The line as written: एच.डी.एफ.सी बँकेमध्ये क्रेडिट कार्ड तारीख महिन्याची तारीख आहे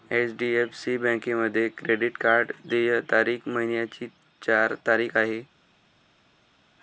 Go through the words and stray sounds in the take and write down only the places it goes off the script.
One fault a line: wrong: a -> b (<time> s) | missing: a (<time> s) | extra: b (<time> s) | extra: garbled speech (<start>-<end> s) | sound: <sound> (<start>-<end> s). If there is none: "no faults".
extra: देय (2.6 s)
extra: चार (4.4 s)